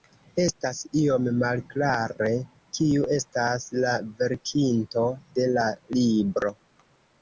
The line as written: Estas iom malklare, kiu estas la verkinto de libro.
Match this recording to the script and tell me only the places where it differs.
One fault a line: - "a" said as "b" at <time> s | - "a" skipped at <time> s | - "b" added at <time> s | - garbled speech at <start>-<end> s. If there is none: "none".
- "la" added at 5.6 s